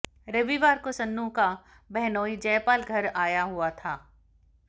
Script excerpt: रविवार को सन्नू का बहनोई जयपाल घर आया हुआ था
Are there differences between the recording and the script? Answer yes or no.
no